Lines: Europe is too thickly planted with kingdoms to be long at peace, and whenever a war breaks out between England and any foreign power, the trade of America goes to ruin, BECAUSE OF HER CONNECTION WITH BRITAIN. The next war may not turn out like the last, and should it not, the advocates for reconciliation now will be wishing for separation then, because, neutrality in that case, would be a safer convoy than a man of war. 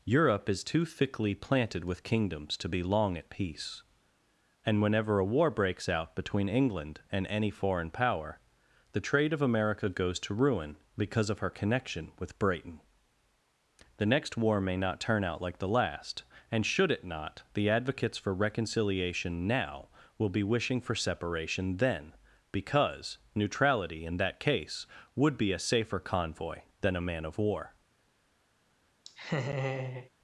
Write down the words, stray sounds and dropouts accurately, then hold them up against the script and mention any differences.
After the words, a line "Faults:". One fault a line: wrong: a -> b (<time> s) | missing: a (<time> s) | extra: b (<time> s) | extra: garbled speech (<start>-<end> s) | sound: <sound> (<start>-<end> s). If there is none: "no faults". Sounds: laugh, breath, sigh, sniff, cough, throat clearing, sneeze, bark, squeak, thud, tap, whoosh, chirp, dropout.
Europe is too thickly planted with kingdoms to be long at peace, and whenever a war breaks out between England and any foreign power, the trade of America goes to ruin, BECAUSE OF HER CONNECTION WITH BRITAIN. The next war may not turn out like the last, and should it not, the advocates for reconciliation now will be wishing for separation then, because, neutrality in that case, would be a safer convoy than a man of war.
Faults:
sound: laugh (29.0-30.1 s)